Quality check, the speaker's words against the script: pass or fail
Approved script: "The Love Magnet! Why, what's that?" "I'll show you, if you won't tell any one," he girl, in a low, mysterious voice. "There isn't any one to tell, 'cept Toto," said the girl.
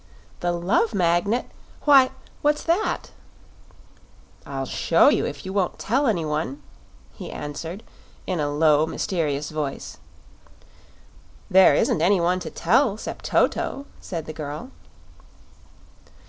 fail